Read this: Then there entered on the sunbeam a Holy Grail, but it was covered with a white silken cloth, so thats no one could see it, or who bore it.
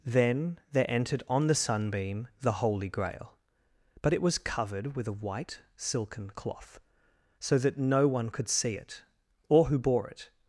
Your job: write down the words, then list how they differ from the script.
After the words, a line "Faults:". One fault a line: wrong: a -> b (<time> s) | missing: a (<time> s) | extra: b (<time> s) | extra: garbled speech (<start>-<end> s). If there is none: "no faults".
Then there entered on the sunbeam the Holy Grail, but it was covered with a white silken cloth, so that no one could see it, or who bore it.
Faults:
wrong: a -> the (2.4 s)
wrong: thats -> that (7.6 s)